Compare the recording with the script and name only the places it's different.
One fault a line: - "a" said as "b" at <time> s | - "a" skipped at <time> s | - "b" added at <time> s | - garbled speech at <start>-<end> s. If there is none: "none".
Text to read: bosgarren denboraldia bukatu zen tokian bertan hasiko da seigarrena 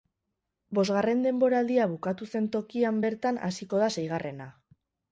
none